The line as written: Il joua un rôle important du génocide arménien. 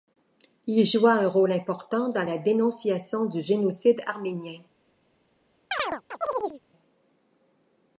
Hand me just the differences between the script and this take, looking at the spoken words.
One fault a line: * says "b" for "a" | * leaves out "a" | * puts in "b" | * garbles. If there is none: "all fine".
* puts in "dans la dénonciation"